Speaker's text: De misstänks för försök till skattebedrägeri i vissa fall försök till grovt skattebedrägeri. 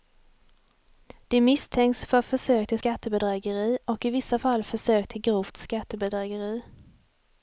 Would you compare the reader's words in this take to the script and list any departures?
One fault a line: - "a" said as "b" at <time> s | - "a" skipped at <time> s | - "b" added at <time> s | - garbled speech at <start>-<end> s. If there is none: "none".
- "och" added at 3.9 s